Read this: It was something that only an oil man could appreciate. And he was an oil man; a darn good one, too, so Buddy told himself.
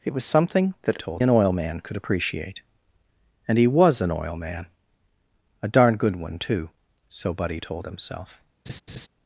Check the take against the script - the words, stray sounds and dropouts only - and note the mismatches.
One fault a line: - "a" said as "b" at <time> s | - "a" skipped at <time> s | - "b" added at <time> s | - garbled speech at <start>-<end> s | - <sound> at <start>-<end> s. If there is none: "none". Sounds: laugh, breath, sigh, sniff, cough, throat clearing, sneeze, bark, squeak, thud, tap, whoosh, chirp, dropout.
- "only" said as "told" at 1.0 s
- laugh at 8.7-9.1 s